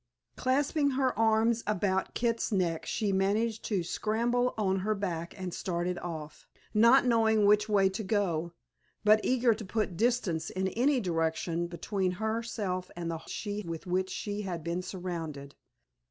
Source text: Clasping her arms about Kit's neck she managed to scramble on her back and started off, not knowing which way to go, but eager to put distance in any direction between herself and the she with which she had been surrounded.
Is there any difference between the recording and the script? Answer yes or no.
no